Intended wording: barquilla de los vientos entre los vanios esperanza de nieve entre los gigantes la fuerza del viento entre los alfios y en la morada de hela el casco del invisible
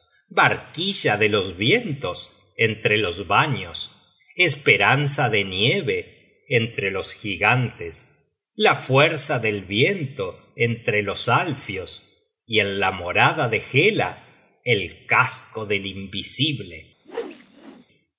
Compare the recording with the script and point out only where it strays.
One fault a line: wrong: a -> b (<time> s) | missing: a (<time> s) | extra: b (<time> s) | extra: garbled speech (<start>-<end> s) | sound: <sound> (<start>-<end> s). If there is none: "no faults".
sound: whoosh (17.0-17.9 s)